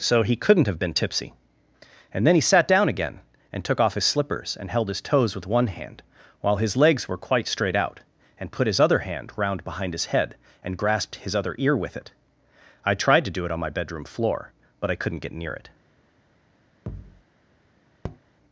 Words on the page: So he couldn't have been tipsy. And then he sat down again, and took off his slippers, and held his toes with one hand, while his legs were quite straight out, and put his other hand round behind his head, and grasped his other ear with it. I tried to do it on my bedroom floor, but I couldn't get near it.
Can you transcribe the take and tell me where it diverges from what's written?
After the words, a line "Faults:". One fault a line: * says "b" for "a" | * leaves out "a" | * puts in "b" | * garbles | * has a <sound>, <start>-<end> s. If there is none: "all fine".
So he couldn't have been tipsy. And then he sat down again, and took off his slippers, and held his toes with one hand, while his legs were quite straight out, and put his other hand round behind his head, and grasped his other ear with it. I tried to do it on my bedroom floor, but I couldn't get near it.
Faults:
* has a thud, 16.9-17.2 s
* has a tap, 18.0-18.2 s